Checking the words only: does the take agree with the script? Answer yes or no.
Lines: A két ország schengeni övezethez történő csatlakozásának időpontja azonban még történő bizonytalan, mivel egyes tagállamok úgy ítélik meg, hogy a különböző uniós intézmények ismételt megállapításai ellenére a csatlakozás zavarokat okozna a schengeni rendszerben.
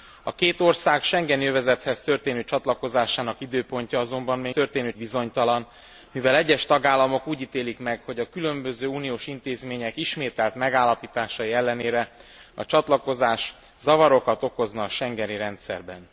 yes